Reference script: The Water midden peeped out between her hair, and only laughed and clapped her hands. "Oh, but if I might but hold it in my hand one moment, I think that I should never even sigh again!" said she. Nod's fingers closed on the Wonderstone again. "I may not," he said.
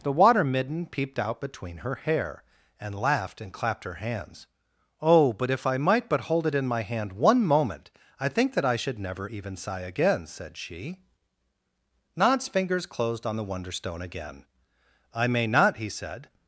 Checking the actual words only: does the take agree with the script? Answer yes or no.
no